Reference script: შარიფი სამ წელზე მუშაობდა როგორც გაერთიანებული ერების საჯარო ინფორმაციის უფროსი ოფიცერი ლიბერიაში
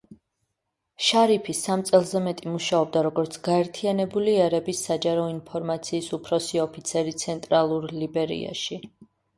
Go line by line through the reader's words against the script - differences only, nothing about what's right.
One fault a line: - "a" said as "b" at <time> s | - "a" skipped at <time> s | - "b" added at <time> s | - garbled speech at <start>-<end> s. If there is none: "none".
- "მეტი" added at 2.3 s
- "ცენტრალურ" added at 7.3 s